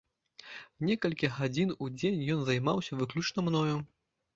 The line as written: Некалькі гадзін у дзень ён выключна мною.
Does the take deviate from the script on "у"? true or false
false